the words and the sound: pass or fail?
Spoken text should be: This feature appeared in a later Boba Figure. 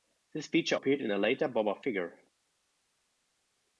pass